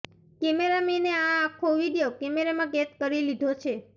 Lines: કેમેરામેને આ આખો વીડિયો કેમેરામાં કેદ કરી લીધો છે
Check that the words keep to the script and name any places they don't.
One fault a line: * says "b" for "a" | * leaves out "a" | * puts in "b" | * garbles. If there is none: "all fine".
all fine